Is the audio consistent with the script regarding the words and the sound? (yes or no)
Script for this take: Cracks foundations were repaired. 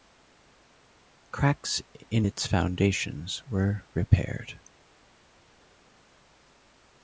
no